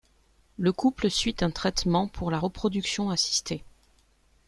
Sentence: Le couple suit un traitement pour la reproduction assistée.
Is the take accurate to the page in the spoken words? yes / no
yes